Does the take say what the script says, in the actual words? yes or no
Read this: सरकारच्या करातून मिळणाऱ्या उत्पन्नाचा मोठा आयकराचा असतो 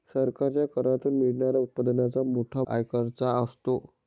yes